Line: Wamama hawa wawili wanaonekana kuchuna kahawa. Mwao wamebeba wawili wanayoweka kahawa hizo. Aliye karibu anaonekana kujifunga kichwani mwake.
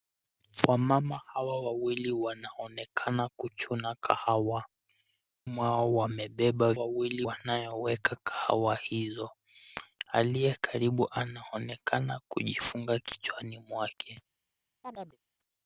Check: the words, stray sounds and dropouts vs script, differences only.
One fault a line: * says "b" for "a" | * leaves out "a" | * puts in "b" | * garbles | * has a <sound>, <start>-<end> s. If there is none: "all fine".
* has a chirp, 14.8-15.2 s